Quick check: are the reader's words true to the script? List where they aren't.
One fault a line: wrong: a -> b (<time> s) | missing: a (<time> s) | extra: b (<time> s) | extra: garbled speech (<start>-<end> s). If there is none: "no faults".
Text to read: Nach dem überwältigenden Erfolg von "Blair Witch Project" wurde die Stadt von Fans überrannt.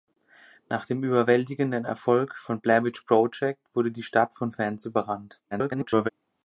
extra: garbled speech (5.5-6.1 s)